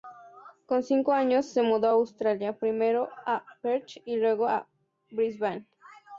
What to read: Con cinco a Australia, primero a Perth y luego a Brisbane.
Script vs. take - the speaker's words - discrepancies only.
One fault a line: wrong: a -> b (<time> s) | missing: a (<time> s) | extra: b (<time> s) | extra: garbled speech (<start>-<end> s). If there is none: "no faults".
extra: años se mudó (1.1 s)